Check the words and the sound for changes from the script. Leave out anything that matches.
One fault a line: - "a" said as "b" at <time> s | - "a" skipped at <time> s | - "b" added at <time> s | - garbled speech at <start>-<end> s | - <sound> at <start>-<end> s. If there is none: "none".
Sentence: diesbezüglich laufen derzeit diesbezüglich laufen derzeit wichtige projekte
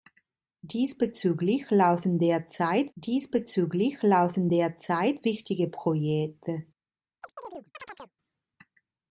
- chirp at 7.2-8.2 s